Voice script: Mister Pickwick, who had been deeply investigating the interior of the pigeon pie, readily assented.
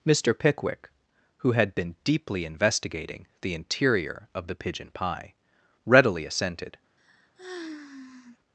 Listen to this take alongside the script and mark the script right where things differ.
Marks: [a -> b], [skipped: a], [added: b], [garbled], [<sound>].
Mister Pickwick, who had been deeply investigating the interior of the pigeon pie, readily assented. [sigh]